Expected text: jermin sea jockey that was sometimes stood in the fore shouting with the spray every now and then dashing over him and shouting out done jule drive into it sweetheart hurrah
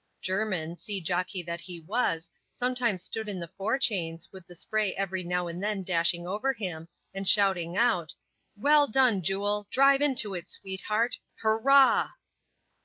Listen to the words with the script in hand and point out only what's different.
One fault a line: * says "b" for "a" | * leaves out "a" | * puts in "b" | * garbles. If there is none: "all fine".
* puts in "he"
* says "chains" for "shouting"
* puts in "well"